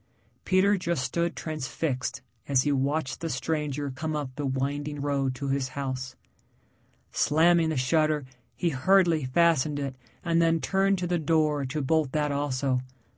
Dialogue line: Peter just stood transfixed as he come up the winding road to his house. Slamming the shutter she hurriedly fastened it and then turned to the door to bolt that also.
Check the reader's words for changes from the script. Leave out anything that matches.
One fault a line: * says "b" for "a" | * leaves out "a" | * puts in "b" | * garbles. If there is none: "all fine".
* puts in "watched the stranger"
* says "he" for "she"